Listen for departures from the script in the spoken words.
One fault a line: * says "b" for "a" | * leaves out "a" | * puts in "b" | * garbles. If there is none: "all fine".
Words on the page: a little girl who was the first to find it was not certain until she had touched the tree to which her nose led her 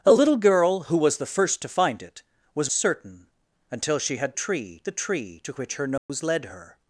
* leaves out "not"
* says "tree" for "touched"